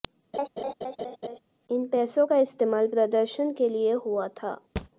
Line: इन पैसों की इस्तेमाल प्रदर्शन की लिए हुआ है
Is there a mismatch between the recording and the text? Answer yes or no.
yes